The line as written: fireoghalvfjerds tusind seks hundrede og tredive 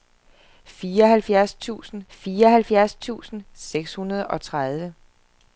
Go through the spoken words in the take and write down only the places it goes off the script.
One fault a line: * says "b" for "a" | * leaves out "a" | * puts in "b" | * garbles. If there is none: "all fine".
* puts in "fireoghalvfjerds tusind"